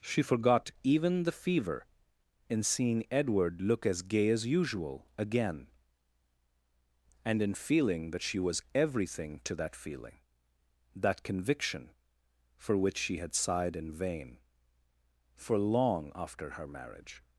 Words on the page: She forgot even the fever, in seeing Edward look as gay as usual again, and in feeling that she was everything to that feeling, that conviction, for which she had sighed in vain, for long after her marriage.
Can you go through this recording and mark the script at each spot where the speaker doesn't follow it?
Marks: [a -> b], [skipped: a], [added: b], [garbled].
She forgot even the fever, in seeing Edward look as gay as usual again, and in feeling that she was everything to that feeling, that conviction, for which she had sighed in vain, for long after her marriage.